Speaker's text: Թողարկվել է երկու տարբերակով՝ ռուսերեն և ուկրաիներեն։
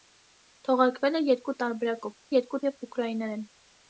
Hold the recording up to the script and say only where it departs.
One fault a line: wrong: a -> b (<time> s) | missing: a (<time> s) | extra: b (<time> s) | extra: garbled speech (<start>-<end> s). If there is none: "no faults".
wrong: ռուսերեն -> երկու (2.3 s)